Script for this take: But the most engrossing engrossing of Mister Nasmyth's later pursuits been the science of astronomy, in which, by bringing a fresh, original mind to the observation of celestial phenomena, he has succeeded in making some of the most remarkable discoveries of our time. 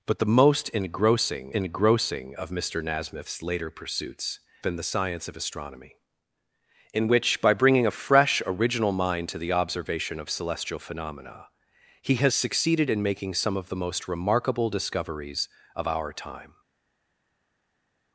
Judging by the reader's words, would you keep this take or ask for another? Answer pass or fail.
pass